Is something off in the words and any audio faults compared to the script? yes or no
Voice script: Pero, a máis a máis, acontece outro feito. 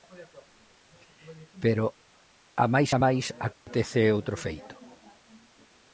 yes